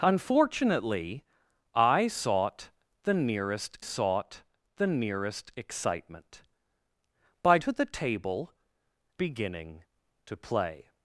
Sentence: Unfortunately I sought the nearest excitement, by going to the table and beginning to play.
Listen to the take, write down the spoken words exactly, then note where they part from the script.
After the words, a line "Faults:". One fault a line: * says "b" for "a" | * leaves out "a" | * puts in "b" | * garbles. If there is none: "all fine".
Unfortunately I sought the nearest sought the nearest excitement, by to the table beginning to play.
Faults:
* puts in "sought the nearest"
* leaves out "going"
* leaves out "and"